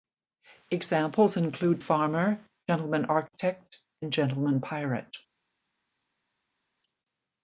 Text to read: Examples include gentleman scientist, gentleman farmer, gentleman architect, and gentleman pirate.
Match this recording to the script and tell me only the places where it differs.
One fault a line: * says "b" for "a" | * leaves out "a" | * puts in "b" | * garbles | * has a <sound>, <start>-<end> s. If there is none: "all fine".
* leaves out "gentleman scientist gentleman"